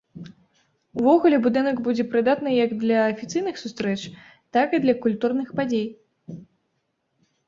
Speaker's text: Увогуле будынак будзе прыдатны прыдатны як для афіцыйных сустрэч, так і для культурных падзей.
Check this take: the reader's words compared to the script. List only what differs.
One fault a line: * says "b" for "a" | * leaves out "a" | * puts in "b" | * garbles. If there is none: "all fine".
* leaves out "прыдатны"